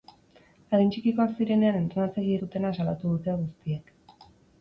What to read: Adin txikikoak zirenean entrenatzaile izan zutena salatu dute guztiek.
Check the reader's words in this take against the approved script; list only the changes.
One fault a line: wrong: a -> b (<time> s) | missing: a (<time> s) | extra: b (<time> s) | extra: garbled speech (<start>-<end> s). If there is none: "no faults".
missing: izan (2.4 s)